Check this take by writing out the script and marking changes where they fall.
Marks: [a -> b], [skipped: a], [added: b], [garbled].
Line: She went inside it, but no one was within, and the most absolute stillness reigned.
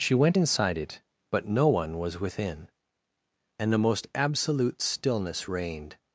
She went inside it, but no one was within, and the most absolute stillness reigned.